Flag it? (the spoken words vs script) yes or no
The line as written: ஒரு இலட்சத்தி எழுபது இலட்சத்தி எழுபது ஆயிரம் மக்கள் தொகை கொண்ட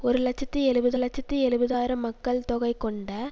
no